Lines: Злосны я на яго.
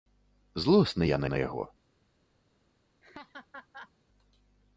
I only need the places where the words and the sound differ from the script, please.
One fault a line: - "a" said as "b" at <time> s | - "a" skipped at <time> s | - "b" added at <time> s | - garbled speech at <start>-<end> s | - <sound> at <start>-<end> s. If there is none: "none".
- "на" added at 1.3 s
- laugh at 3.0-3.9 s